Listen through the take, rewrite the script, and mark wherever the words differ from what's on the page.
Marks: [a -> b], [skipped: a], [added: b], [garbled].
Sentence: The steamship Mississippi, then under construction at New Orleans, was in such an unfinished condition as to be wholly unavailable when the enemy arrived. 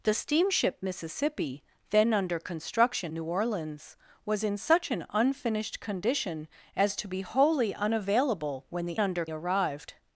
The steamship Mississippi, then under construction [skipped: at] New Orleans, was in such an unfinished condition as to be wholly unavailable when the [enemy -> under] arrived.